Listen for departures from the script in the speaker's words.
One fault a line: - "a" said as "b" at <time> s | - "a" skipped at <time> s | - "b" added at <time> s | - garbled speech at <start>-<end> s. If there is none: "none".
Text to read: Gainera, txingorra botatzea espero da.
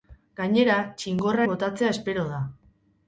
none